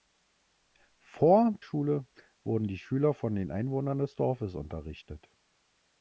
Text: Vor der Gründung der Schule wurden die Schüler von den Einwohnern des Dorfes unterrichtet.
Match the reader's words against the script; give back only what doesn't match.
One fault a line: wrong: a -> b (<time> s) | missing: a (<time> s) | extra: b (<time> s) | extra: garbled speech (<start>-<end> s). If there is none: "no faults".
missing: der Gründung der (1.5 s)